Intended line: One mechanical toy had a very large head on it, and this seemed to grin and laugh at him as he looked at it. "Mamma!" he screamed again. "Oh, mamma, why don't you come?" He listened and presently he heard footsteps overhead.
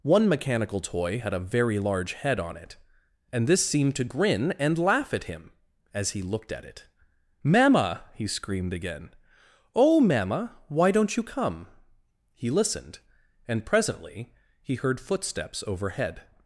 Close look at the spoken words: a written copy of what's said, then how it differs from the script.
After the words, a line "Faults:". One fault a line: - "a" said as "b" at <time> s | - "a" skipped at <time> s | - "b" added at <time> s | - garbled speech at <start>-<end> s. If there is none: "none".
One mechanical toy had a very large head on it, and this seemed to grin and laugh at him as he looked at it. "Mamma!" he screamed again. "Oh, mamma, why don't you come?" He listened and presently he heard footsteps overhead.
Faults:
none